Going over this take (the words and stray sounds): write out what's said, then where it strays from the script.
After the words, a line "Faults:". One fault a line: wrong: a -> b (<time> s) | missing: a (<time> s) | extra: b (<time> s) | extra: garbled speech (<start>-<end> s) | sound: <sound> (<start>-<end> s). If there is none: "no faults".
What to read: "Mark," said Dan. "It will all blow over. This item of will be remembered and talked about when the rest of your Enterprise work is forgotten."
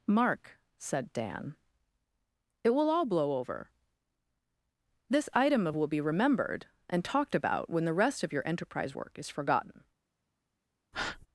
"Mark," said Dan. "It will all blow over. This item of will be remembered and talked about when the rest of your Enterprise work is forgotten."
Faults:
sound: breath (10.9-11.3 s)